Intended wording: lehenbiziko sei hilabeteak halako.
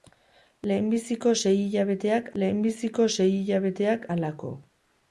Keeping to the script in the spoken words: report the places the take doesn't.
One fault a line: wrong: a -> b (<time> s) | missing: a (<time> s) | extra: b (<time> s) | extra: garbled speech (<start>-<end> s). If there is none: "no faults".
extra: lehenbiziko sei hilabeteak (2.4 s)